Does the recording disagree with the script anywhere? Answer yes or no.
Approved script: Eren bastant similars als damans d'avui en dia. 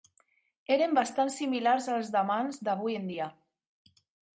no